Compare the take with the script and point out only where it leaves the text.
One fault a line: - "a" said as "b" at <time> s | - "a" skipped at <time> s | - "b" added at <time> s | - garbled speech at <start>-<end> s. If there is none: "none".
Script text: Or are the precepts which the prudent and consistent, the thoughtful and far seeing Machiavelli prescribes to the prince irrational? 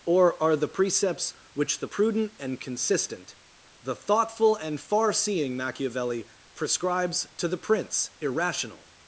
none